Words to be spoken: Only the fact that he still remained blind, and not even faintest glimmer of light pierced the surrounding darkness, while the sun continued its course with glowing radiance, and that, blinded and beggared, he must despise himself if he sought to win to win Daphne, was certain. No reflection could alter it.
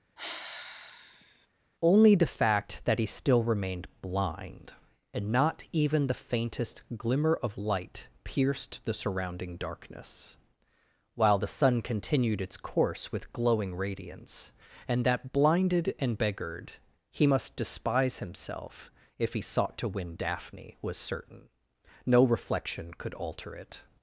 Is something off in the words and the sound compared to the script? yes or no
yes